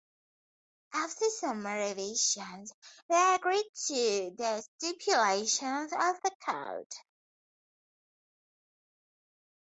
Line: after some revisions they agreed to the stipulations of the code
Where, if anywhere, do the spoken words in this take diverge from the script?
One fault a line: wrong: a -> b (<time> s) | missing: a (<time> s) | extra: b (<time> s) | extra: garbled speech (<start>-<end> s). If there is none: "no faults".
no faults